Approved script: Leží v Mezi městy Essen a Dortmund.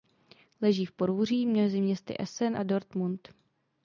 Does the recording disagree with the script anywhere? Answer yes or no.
yes